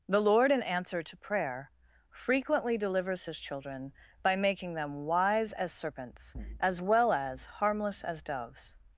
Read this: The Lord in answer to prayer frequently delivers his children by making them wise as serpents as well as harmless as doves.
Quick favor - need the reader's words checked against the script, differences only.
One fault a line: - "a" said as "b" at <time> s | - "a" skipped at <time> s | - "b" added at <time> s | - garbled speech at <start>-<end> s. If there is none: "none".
none